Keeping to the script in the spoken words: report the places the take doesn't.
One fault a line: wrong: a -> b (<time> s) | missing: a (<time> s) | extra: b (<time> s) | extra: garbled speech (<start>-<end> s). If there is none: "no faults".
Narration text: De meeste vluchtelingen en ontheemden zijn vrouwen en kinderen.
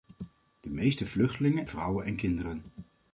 missing: en ontheemden zijn (1.7 s)